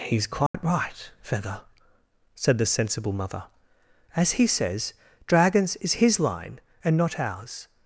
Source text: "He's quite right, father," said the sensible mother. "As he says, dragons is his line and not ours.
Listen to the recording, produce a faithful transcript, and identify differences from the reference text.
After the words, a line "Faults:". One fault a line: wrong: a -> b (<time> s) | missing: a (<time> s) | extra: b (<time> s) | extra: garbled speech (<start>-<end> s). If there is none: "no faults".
"He's quite right, feather," said the sensible mother. "As he says, dragons is his line and not ours.
Faults:
wrong: father -> feather (1.2 s)